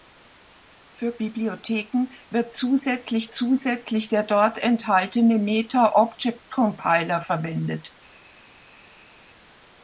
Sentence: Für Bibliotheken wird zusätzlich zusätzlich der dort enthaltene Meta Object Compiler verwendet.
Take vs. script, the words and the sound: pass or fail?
pass